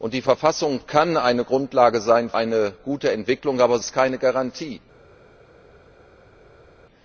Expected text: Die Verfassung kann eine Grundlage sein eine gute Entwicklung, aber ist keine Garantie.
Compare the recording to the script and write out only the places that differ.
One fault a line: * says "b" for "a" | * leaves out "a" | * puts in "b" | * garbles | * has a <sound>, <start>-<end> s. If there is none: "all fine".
all fine